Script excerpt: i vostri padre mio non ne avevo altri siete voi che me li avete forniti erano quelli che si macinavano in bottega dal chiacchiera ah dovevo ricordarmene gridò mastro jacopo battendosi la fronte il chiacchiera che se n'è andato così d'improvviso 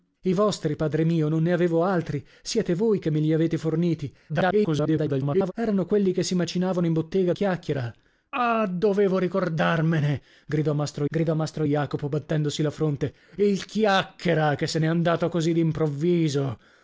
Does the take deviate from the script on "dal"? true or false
true